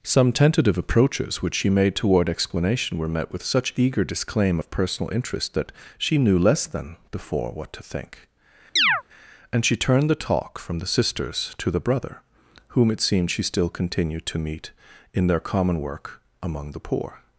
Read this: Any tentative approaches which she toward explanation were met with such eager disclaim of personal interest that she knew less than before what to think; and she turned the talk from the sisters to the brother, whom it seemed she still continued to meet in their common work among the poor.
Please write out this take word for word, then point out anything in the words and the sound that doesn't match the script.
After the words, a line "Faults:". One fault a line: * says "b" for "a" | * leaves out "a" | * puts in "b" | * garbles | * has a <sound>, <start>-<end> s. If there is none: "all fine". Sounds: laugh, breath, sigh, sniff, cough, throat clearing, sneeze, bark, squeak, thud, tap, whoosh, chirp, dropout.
Some tentative approaches which she made toward explanation were met with such eager disclaim of personal interest that she knew less than before what to think; and she turned the talk from the sisters to the brother, whom it seemed she still continued to meet in their common work among the poor.
Faults:
* says "Some" for "Any"
* puts in "made"
* has a chirp, 8.8-9.0 s